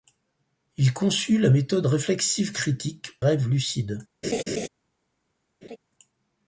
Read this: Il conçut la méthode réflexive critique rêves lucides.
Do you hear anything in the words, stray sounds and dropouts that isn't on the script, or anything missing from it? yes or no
yes